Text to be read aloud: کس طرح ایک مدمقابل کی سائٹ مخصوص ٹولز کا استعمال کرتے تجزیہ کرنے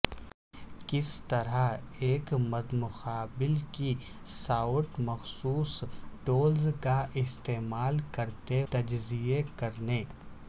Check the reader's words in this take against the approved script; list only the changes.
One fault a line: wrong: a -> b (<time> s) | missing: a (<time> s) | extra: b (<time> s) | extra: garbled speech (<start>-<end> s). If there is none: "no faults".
no faults